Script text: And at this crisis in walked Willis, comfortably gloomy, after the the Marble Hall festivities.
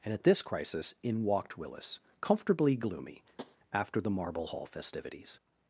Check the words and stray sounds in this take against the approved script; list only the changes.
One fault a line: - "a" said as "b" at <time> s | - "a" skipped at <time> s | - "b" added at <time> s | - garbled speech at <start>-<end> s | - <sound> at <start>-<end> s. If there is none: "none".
- tap at 3.4-3.6 s
- "the" skipped at 4.1 s